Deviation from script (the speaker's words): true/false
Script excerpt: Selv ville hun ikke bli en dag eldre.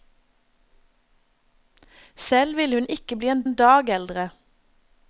true